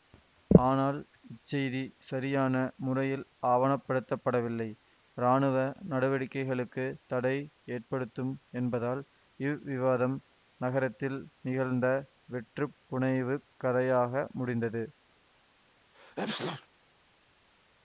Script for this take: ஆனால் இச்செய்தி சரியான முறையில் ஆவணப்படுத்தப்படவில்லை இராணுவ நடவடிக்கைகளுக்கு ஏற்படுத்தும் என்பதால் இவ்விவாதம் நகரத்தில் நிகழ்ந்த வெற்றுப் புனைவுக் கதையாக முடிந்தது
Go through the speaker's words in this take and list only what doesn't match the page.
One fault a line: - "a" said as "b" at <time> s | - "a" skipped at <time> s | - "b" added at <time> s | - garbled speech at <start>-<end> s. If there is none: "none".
- "தடை" added at 7.1 s